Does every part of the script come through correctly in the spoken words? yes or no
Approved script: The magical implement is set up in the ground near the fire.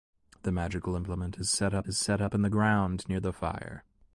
no